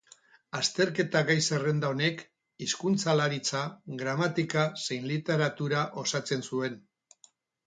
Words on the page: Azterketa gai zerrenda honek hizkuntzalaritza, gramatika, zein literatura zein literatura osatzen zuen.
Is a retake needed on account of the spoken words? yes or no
yes